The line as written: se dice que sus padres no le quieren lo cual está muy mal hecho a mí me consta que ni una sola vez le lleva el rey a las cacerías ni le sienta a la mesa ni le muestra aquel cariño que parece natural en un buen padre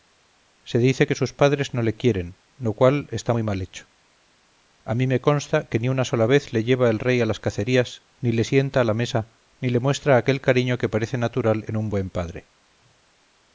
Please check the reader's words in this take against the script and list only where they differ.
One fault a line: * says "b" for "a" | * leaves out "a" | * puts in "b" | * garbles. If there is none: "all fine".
all fine